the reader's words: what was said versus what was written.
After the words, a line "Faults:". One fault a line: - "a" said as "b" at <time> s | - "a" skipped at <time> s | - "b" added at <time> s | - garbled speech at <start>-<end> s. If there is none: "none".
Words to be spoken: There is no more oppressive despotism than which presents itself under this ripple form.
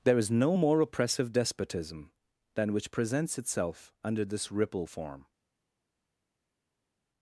There is no more oppressive despotism than which presents itself under this ripple form.
Faults:
none